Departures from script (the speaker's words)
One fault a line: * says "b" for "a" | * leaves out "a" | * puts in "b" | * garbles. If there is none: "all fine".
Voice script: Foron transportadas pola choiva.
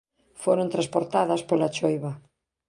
all fine